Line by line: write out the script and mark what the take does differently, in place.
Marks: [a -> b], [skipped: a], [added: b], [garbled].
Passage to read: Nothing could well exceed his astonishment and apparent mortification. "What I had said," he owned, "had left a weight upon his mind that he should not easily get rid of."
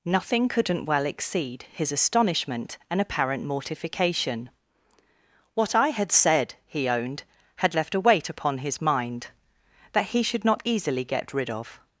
Nothing [could -> couldn't] well exceed his astonishment and apparent mortification. "What I had said," he owned, "had left a weight upon his mind that he should not easily get rid of."